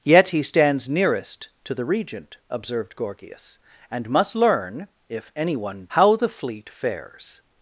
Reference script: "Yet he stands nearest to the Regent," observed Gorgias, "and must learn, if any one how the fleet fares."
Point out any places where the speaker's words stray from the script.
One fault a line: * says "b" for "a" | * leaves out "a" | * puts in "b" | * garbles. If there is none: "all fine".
all fine